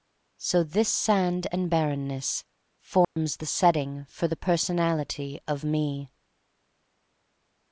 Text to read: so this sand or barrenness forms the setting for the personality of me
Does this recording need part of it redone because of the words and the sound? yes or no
yes